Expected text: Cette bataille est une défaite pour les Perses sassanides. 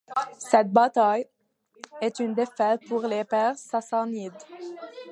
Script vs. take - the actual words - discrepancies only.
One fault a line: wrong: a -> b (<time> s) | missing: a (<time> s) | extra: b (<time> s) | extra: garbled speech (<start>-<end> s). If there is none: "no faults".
no faults